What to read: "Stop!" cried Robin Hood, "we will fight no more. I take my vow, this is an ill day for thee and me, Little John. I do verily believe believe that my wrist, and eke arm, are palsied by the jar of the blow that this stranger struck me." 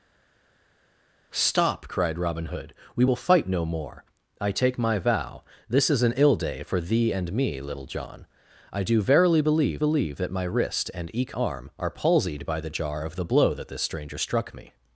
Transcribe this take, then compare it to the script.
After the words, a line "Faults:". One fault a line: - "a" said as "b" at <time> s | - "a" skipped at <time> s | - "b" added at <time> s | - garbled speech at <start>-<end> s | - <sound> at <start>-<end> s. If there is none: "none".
"Stop!" cried Robin Hood, "we will fight no more. I take my vow, this is an ill day for thee and me, Little John. I do verily believe believe that my wrist, and eke arm, are palsied by the jar of the blow that this stranger struck me."
Faults:
none